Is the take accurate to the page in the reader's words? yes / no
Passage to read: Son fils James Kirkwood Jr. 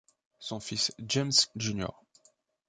no